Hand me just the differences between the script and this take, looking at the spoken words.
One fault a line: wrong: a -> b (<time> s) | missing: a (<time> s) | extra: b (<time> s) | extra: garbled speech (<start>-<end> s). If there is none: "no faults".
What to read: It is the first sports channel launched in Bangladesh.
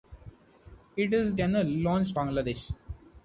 missing: the first sports (1.4 s)
missing: in (2.2 s)